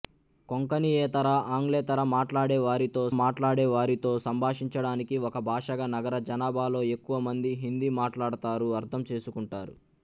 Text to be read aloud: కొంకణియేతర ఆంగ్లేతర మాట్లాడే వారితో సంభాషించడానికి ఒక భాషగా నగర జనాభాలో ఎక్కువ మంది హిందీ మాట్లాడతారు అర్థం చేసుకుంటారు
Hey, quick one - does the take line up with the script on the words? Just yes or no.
no